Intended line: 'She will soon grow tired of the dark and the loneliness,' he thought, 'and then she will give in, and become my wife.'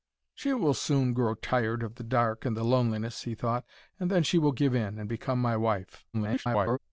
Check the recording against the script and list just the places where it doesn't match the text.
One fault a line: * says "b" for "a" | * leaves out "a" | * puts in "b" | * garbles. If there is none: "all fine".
* garbles